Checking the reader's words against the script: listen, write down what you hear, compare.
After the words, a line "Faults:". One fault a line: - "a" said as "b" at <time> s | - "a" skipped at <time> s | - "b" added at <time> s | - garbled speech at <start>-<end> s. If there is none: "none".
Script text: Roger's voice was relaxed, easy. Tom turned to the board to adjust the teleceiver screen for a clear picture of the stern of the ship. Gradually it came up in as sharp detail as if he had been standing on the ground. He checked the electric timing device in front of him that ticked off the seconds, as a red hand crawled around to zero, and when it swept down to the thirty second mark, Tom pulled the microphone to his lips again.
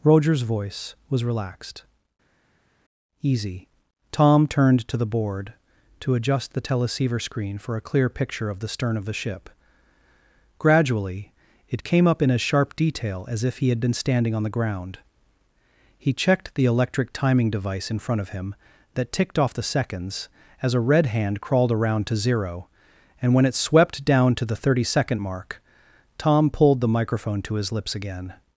Roger's voice was relaxed, easy. Tom turned to the board to adjust the teleceiver screen for a clear picture of the stern of the ship. Gradually it came up in as sharp detail as if he had been standing on the ground. He checked the electric timing device in front of him that ticked off the seconds, as a red hand crawled around to zero, and when it swept down to the thirty second mark, Tom pulled the microphone to his lips again.
Faults:
none